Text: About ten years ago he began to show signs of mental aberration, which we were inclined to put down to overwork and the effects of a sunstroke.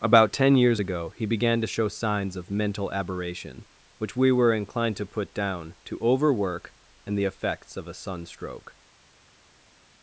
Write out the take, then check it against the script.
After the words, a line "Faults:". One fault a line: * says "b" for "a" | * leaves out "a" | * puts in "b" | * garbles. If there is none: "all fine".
About ten years ago he began to show signs of mental aberration, which we were inclined to put down to overwork and the effects of a sunstroke.
Faults:
all fine